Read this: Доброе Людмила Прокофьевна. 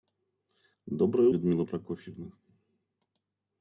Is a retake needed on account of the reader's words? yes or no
no